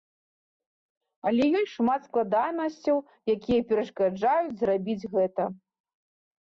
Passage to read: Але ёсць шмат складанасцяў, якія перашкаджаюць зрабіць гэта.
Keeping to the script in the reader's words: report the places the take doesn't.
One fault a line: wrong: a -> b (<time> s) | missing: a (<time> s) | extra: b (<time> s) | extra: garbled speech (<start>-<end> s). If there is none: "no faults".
no faults